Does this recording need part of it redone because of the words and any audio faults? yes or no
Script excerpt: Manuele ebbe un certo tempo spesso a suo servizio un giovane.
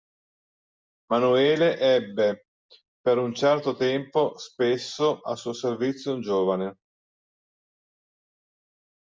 yes